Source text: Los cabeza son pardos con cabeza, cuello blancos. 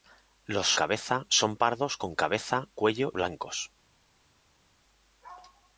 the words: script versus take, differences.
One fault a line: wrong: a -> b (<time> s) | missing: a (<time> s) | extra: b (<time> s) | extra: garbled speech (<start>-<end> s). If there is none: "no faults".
no faults